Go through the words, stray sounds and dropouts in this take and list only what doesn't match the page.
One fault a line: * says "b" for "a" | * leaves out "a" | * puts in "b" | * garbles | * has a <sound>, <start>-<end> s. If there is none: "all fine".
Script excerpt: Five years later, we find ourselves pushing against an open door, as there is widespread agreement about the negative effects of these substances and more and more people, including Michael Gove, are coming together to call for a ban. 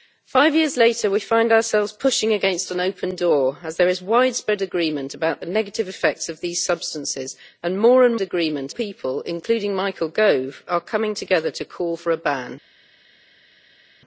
* says "agreement" for "more"